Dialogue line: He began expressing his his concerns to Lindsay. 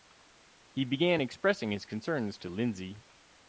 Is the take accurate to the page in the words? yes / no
no